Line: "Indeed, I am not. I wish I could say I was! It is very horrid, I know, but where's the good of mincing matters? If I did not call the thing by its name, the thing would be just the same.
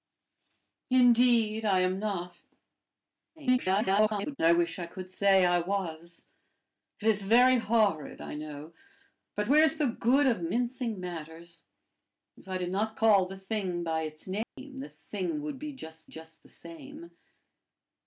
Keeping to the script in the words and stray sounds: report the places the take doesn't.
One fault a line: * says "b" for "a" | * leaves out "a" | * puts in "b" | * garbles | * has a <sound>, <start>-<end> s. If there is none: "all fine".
* garbles
* has a dropout, 14.4-14.6 s
* puts in "just"